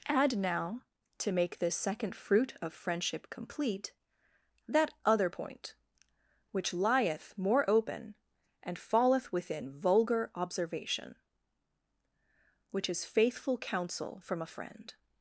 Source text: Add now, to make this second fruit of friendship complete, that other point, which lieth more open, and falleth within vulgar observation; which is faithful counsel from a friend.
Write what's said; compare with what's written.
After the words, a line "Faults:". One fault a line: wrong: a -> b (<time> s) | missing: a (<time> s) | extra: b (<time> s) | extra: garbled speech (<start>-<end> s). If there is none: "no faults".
Add now, to make this second fruit of friendship complete, that other point, which lieth more open, and falleth within vulgar observation; which is faithful counsel from a friend.
Faults:
no faults